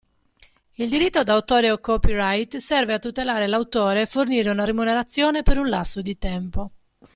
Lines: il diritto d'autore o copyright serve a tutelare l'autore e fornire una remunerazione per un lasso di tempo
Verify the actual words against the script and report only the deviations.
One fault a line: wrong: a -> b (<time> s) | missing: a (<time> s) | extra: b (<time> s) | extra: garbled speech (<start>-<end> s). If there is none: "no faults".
no faults